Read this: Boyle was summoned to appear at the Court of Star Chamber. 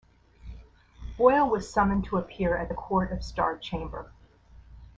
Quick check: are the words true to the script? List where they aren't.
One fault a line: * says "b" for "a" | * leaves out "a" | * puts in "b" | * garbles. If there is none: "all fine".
all fine